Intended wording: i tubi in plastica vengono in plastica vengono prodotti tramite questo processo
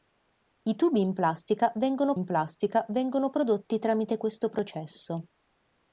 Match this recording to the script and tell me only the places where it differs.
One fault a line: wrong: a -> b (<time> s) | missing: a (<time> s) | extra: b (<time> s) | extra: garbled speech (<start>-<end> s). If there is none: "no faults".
no faults